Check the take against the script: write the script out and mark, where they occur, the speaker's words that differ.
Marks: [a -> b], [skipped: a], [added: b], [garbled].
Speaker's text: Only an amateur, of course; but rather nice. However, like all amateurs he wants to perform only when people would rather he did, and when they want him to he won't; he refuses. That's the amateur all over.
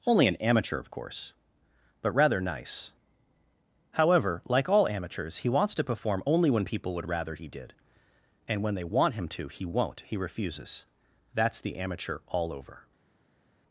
Only an amateur, of course; but rather nice. However, like all amateurs he wants to perform only when people would rather he did, and when they want him to he won't; he refuses. That's the amateur all over.